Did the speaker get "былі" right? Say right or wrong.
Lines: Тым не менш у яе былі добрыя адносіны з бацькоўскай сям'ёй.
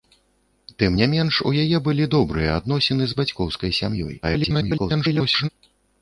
right